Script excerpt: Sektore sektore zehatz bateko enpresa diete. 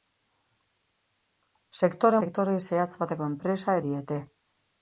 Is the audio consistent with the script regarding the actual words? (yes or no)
yes